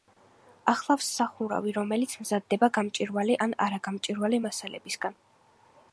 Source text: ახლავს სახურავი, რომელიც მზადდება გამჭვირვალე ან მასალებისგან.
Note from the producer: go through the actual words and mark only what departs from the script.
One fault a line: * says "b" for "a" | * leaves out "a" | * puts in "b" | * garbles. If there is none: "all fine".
* puts in "არაგამჭვირვალე"